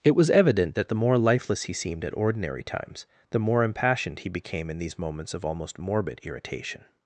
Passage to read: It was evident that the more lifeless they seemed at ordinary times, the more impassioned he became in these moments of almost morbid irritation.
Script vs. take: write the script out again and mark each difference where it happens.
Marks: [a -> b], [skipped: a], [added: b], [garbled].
It was evident that the more lifeless [they -> he] seemed at ordinary times, the more impassioned he became in these moments of almost morbid irritation.